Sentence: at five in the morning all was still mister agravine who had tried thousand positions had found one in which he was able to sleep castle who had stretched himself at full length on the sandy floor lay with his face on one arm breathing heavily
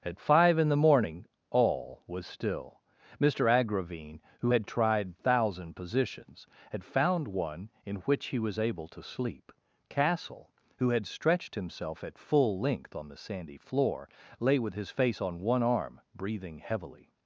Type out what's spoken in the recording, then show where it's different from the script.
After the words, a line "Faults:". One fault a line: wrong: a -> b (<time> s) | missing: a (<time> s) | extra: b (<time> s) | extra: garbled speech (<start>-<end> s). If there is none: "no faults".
at five in the morning all was still mister agravine who had tried thousand positions had found one in which he was able to sleep castle who had stretched himself at full length on the sandy floor lay with his face on one arm breathing heavily
Faults:
no faults